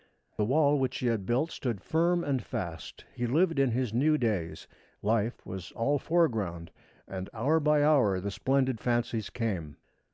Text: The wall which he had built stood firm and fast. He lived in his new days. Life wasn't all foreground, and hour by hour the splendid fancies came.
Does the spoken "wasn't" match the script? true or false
false